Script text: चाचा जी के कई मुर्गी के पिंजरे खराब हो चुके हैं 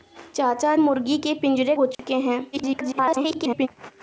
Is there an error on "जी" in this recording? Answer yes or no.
yes